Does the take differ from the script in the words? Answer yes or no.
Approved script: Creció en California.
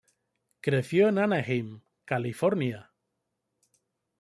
yes